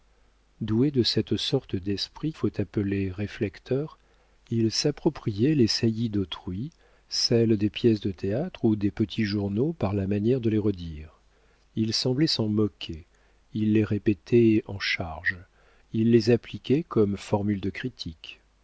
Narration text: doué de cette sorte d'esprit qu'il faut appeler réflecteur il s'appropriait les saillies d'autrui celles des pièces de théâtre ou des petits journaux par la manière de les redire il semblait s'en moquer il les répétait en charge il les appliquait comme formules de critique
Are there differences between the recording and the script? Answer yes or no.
yes